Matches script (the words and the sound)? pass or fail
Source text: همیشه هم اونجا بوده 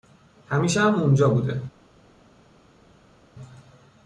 pass